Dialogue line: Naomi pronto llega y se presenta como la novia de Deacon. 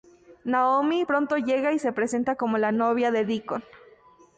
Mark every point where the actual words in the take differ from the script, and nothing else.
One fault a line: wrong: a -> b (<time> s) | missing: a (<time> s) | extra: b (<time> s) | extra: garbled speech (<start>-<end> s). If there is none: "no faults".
no faults